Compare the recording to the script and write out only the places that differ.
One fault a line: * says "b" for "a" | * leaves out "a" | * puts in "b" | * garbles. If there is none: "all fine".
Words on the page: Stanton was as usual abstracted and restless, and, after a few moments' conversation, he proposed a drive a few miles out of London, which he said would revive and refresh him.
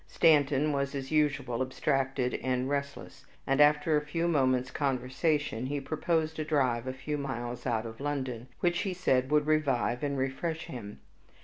all fine